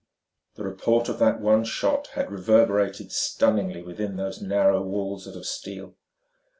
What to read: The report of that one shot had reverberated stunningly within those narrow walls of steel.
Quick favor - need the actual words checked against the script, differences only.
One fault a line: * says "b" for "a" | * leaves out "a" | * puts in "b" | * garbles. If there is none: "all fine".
* puts in "of"